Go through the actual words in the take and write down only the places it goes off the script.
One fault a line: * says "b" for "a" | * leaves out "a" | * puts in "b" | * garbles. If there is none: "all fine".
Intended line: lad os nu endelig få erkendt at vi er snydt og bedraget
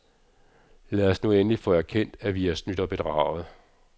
all fine